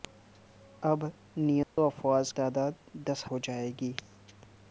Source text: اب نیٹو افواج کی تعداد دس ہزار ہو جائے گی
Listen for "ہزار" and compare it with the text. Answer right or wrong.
wrong